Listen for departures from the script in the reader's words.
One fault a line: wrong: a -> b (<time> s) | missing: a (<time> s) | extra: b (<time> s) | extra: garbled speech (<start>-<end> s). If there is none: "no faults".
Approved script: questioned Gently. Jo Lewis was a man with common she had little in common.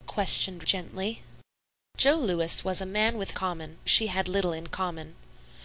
no faults